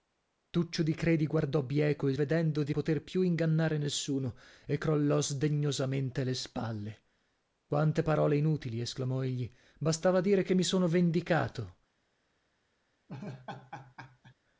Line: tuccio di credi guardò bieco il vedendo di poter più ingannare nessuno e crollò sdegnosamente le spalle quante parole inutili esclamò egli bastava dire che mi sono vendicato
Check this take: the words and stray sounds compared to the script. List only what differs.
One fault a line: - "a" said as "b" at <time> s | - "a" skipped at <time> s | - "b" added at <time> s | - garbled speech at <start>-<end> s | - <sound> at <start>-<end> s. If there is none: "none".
- laugh at 13.1-14.3 s